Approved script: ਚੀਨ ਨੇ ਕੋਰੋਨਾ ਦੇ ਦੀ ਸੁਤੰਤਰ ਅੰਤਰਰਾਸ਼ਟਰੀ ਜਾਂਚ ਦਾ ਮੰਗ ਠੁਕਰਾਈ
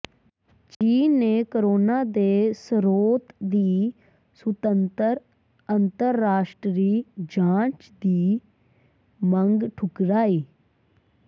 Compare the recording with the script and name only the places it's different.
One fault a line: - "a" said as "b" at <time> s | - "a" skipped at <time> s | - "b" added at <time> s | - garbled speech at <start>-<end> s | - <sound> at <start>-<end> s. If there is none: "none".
- dropout at 0.7-0.8 s
- "ਸਰੋਤ" added at 2.6 s
- "ਦਾ" said as "ਦੀ" at 8.0 s